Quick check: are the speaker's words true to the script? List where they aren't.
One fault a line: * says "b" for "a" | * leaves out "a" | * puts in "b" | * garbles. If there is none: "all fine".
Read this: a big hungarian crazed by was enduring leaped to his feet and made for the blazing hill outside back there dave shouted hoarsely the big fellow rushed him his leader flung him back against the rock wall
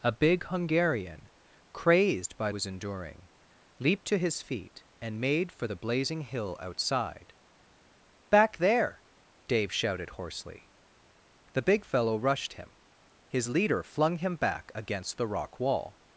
all fine